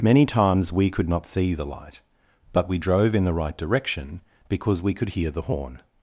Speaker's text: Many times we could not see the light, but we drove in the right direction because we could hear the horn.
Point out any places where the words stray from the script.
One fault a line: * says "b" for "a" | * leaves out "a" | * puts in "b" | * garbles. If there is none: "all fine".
all fine